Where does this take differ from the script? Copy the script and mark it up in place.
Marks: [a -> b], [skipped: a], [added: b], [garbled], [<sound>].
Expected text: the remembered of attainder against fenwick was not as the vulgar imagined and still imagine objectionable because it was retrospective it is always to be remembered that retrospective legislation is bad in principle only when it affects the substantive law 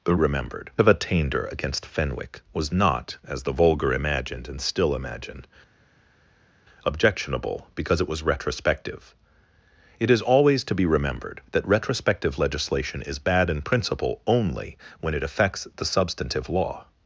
the remembered of attainder against fenwick was not as the vulgar imagined and still imagine objectionable because it was retrospective it is always to be remembered that retrospective legislation is bad in principle only when it affects the substantive law